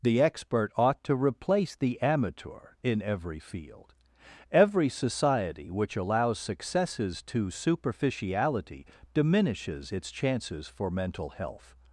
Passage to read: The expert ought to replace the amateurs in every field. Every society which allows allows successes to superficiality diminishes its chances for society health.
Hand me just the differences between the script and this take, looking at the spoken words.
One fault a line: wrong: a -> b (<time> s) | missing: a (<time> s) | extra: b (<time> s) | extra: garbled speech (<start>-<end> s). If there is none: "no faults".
wrong: amateurs -> amateur (2.0 s)
missing: allows (6.4 s)
wrong: society -> mental (10.9 s)